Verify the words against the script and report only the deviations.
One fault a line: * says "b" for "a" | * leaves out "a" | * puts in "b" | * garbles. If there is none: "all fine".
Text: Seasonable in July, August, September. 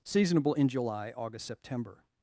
all fine